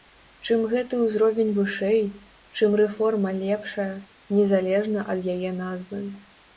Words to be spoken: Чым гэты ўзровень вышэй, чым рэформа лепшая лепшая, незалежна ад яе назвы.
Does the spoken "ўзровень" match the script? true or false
true